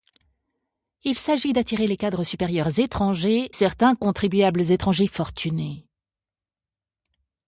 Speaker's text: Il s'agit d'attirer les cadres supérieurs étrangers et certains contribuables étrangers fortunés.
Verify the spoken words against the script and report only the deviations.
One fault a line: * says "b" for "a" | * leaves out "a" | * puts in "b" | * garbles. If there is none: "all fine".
* leaves out "et"